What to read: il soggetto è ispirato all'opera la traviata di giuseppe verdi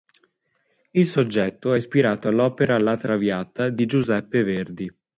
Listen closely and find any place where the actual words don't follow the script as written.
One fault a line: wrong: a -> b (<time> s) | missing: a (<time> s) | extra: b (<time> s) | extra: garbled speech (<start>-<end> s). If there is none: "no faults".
no faults